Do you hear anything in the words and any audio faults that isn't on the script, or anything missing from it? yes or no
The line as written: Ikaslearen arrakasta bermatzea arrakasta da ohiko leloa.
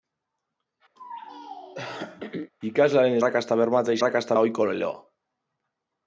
yes